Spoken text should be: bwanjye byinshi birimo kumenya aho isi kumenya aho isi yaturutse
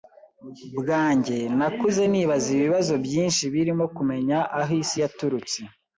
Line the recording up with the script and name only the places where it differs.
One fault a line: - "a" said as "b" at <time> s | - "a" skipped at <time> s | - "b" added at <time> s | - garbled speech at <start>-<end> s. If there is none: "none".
- "byinshi birimo kumenya aho isi" said as "nakuze nibaza ibibazo byinshi birimo" at 1.6 s